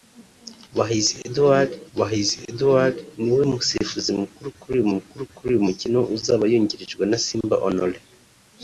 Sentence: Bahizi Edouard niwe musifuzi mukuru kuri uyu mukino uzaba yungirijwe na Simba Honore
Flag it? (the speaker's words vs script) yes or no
yes